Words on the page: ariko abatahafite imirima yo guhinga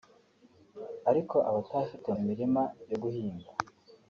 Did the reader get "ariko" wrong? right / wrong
right